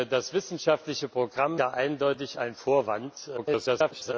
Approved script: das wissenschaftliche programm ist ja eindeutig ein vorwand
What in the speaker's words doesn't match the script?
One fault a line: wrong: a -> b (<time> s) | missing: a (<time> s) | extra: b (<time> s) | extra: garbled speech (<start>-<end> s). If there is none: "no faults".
missing: ist (1.6 s)
extra: garbled speech (3.4-4.1 s)